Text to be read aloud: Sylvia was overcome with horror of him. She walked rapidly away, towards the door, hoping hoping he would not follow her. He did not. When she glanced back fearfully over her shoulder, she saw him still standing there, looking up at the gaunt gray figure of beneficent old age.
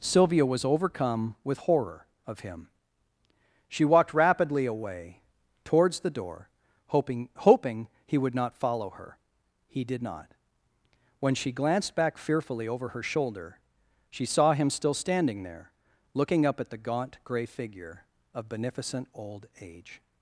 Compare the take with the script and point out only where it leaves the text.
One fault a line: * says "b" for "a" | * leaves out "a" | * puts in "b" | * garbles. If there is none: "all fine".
all fine